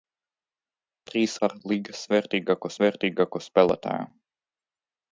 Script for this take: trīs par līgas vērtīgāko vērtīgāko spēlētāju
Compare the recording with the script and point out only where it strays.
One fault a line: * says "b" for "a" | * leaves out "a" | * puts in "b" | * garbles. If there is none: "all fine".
all fine